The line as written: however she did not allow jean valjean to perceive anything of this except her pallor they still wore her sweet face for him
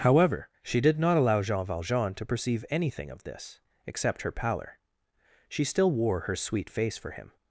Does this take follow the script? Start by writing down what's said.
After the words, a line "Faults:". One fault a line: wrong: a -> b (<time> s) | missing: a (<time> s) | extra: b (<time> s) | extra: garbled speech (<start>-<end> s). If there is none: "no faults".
however she did not allow jean valjean to perceive anything of this except her pallor she still wore her sweet face for him
Faults:
wrong: they -> she (5.5 s)